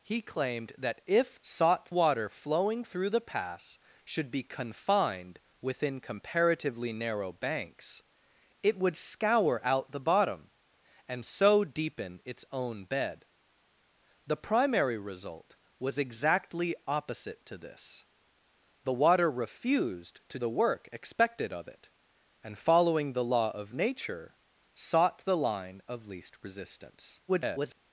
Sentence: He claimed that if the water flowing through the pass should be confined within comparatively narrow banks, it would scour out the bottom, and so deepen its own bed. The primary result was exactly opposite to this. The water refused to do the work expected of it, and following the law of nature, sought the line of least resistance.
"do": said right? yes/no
no